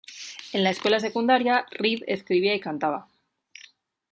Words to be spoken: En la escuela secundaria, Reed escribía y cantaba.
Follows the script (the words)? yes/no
yes